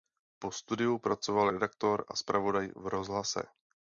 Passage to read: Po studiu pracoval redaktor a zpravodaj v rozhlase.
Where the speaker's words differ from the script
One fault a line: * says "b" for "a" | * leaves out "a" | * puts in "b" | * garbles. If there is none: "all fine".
all fine